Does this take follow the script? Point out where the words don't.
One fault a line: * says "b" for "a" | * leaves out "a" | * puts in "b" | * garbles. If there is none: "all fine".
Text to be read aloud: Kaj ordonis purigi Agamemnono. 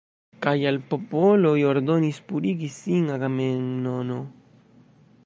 * puts in "al popoloj"
* puts in "sin"